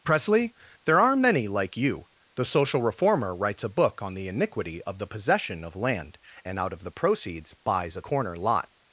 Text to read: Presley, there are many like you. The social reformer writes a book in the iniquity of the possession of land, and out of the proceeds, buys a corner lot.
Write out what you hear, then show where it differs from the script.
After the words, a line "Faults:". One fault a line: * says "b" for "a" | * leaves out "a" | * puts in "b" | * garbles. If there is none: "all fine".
Presley, there are many like you. The social reformer writes a book on the iniquity of the possession of land, and out of the proceeds, buys a corner lot.
Faults:
* says "on" for "in"